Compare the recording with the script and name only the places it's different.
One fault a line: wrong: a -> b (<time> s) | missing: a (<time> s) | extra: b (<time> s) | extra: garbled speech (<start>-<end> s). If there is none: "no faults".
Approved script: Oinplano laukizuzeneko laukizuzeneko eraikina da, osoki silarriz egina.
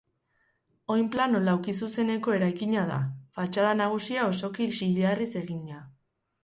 missing: laukizuzeneko (2.4 s)
extra: fatxada nagusia (3.4 s)